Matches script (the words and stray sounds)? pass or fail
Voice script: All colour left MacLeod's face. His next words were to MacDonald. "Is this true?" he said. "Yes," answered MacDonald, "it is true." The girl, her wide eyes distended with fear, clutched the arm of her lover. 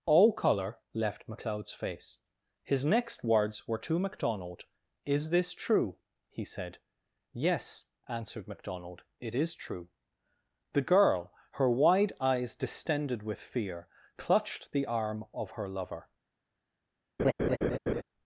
fail